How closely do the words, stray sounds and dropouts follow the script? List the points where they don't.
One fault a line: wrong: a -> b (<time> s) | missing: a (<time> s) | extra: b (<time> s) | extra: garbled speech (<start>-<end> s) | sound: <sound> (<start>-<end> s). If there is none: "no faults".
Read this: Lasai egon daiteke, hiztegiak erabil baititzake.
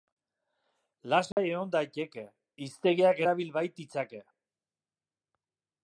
sound: dropout (1.3-1.4 s)